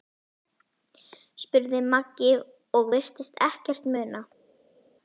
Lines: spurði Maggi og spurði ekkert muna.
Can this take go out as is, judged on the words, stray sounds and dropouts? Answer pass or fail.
fail